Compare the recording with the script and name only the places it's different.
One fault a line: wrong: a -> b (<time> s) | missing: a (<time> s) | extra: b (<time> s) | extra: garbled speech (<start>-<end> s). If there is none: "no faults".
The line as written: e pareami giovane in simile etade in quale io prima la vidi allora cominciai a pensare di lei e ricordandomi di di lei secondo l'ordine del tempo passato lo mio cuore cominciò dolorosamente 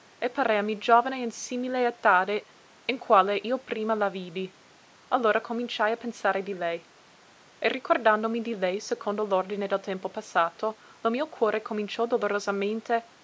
missing: di (8.6 s)